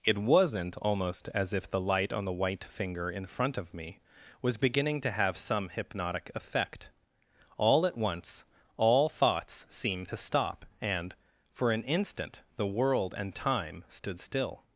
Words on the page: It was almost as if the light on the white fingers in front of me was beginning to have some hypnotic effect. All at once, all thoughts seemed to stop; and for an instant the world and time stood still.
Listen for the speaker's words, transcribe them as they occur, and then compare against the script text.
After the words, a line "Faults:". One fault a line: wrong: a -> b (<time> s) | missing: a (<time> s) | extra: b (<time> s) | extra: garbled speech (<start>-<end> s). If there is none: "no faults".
It wasn't almost as if the light on the white finger in front of me was beginning to have some hypnotic effect. All at once, all thoughts seemed to stop; and for an instant the world and time stood still.
Faults:
wrong: was -> wasn't (0.2 s)
wrong: fingers -> finger (2.6 s)